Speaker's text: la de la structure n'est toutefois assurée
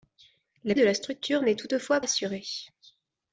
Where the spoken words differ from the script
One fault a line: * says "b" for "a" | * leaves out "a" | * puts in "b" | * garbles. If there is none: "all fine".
all fine